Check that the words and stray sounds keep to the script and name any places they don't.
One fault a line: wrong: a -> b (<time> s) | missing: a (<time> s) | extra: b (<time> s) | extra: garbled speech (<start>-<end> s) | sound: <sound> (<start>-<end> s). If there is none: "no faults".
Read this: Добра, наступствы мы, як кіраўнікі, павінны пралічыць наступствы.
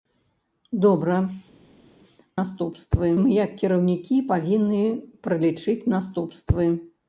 no faults